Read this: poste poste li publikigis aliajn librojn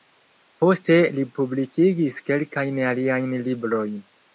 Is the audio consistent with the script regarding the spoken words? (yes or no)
no